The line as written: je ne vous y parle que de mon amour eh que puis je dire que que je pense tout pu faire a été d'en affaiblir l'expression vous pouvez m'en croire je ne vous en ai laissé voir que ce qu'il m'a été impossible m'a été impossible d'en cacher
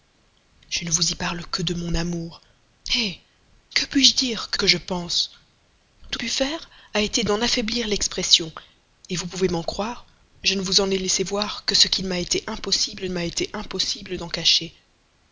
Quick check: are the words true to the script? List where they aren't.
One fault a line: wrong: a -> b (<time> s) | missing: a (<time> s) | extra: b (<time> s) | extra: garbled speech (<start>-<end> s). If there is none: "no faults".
no faults